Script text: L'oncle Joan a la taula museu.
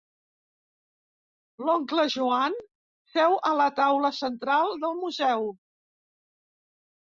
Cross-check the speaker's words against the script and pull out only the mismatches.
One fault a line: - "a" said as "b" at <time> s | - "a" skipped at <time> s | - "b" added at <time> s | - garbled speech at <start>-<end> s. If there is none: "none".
- "seu" added at 3.2 s
- "central del" added at 4.2 s